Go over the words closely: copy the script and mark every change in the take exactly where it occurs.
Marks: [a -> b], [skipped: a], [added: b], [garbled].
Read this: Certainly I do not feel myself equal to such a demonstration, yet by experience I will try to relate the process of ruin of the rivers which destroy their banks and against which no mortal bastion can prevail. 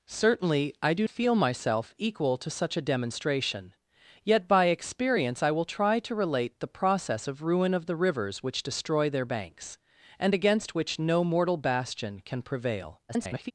Certainly I do [skipped: not] feel myself equal to such a demonstration, yet by experience I will try to relate the process of ruin of the rivers which destroy their banks and against which no mortal bastion can prevail. [garbled]